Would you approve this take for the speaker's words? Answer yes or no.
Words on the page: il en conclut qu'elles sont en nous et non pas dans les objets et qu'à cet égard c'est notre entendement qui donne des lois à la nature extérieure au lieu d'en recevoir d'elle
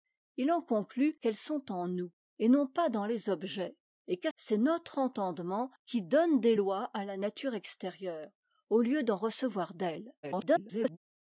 no